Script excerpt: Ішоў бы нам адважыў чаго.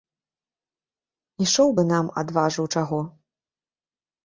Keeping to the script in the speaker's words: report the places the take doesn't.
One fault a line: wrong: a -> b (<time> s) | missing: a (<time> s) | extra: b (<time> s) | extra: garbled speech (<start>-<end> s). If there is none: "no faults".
no faults